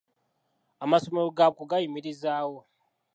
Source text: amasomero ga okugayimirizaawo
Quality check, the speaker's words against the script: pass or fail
pass